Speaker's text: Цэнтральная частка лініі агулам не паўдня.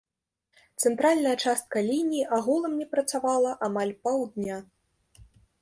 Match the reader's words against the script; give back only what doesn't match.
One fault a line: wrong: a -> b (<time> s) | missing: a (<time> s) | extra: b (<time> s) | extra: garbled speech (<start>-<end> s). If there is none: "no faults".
extra: працавала амаль (3.0 s)